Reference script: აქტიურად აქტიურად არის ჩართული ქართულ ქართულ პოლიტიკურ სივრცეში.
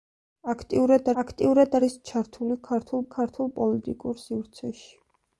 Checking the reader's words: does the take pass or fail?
pass